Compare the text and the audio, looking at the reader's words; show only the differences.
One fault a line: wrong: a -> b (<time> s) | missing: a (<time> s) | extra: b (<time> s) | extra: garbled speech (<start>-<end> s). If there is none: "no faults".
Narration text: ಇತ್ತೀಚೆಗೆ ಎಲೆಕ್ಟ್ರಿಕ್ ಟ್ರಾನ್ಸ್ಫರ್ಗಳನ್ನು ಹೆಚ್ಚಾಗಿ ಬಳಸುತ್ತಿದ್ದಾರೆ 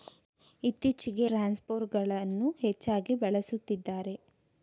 missing: ಎಲೆಕ್ಟ್ರಿಕ್ (1.2 s)